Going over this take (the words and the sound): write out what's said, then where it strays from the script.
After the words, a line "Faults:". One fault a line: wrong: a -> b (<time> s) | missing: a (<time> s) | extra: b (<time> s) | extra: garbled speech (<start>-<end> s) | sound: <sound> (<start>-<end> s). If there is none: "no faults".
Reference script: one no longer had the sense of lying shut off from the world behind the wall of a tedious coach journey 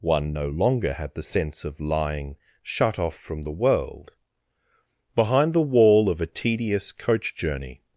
one no longer had the sense of lying shut off from the world behind the wall of a tedious coach journey
Faults:
no faults